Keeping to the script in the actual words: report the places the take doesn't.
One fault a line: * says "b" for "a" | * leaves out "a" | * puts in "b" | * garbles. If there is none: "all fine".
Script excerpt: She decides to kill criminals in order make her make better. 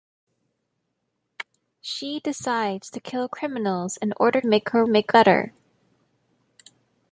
all fine